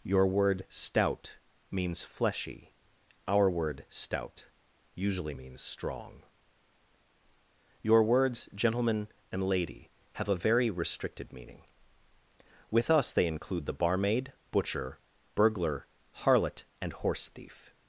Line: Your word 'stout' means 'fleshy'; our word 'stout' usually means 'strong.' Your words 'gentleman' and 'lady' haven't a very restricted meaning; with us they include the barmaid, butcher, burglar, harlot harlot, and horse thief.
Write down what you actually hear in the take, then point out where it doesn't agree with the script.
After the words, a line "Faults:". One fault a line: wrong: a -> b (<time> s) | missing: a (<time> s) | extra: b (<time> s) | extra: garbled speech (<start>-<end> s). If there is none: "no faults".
Your word 'stout' means 'fleshy'; our word 'stout' usually means 'strong.' Your words 'gentleman' and 'lady' have a very restricted meaning; with us they include the barmaid, butcher, burglar, harlot, and horse thief.
Faults:
wrong: haven't -> have (10.1 s)
missing: harlot (16.6 s)